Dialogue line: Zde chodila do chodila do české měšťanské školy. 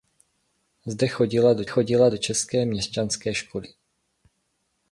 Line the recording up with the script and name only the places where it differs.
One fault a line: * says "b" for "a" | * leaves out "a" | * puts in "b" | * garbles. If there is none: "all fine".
all fine